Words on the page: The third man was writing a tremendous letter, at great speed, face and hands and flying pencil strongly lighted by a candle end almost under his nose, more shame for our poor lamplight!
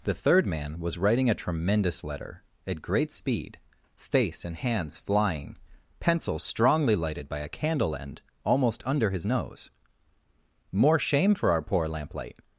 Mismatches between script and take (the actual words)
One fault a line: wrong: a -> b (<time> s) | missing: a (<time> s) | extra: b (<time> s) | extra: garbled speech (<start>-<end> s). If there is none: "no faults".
missing: and (5.0 s)